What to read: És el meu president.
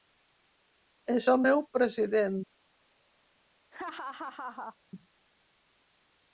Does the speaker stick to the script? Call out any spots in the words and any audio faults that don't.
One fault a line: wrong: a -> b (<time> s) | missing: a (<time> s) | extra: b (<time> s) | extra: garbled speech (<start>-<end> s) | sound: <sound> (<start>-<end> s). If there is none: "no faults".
sound: laugh (3.7-4.8 s)